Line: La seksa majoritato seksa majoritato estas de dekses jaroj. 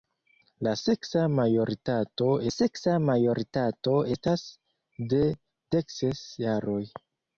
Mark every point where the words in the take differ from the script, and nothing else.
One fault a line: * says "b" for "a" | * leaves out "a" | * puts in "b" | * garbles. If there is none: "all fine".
all fine